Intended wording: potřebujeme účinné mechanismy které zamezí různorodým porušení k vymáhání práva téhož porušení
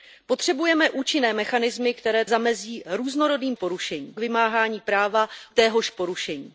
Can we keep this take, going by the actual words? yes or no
yes